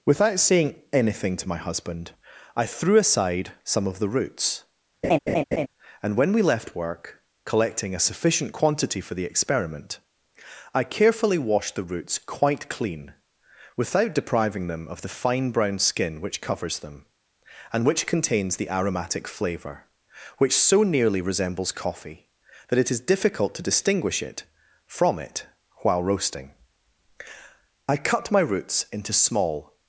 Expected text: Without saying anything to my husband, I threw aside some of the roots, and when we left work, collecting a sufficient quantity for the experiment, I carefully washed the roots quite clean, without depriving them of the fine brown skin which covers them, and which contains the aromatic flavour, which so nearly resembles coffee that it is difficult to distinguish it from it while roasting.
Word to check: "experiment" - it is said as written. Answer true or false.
true